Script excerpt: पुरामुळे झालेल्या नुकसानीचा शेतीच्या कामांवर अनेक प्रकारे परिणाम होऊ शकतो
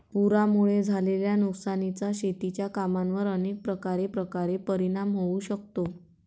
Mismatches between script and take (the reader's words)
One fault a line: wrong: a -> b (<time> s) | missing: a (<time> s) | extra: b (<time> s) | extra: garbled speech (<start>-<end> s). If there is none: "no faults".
extra: प्रकारे (4.1 s)